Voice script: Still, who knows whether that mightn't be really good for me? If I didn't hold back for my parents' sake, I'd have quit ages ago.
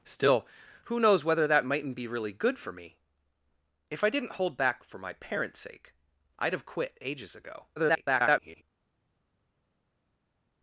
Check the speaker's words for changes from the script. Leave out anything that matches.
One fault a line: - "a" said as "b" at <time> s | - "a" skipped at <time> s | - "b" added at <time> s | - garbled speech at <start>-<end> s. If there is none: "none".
- garbled speech at 7.8-8.6 s